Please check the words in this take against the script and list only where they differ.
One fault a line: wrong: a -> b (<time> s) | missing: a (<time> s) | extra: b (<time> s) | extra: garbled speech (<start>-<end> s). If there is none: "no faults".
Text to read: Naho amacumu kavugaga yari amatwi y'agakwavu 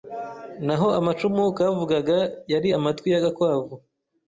no faults